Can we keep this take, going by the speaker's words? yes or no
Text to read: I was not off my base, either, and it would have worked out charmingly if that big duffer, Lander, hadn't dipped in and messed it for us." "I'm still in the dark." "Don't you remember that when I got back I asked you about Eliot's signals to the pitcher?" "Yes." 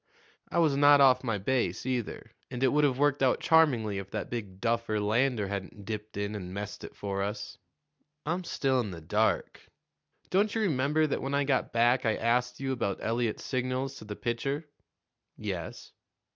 yes